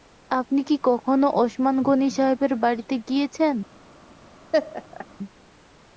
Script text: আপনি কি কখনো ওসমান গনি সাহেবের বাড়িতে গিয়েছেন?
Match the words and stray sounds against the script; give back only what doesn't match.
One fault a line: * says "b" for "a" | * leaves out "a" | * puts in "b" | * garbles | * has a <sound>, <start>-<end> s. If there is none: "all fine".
* has a laugh, 4.5-5.1 s